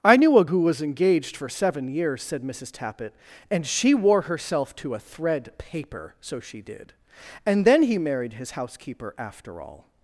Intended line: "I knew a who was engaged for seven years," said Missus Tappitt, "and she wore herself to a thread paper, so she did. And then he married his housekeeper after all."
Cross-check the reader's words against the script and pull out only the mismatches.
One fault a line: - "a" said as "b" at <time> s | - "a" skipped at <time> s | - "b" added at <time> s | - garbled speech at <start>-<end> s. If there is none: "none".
none